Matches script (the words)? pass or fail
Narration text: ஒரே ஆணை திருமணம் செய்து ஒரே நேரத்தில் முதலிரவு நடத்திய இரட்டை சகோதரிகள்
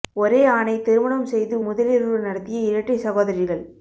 fail